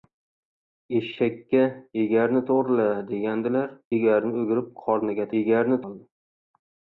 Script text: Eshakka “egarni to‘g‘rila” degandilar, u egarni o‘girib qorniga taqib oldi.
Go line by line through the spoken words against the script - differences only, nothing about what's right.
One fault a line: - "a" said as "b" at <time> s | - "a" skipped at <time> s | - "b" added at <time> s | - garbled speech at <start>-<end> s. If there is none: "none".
- "u" skipped at 3.8 s
- "taqib" said as "egarni" at 5.4 s